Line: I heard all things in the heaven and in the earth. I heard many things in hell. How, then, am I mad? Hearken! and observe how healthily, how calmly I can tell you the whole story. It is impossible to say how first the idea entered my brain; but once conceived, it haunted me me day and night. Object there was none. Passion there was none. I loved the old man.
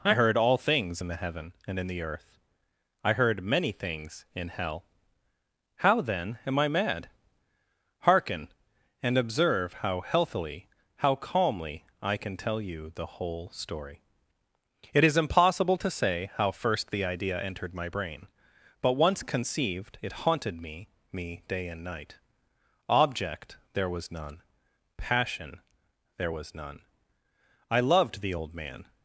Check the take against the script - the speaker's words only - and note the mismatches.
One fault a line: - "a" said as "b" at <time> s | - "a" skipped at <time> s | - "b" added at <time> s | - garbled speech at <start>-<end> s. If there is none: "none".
none